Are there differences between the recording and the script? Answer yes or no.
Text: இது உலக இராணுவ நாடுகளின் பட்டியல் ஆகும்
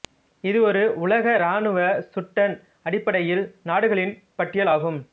yes